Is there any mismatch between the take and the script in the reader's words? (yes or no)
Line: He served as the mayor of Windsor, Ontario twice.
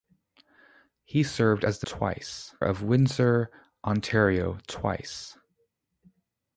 yes